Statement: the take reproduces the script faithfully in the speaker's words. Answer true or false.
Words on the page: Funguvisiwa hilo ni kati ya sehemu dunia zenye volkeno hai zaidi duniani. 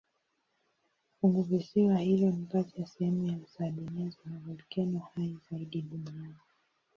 false